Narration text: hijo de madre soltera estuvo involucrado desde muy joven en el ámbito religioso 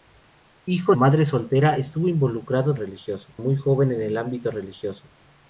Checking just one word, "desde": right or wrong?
wrong